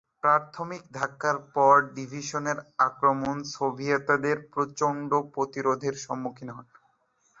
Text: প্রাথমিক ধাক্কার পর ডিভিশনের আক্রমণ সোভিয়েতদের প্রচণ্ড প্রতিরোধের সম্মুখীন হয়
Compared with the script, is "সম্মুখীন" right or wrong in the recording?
right